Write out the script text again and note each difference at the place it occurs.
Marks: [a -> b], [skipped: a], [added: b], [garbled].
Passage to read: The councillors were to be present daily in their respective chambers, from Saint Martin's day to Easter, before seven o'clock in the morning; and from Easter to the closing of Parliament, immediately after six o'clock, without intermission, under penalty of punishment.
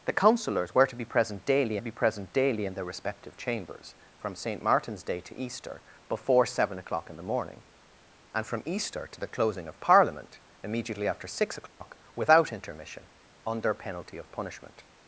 The councillors were to be present daily [added: be present daily] in their respective chambers, from Saint Martin's day to Easter, before seven o'clock in the morning; and from Easter to the closing of Parliament, immediately after six o'clock, without intermission, under penalty of punishment.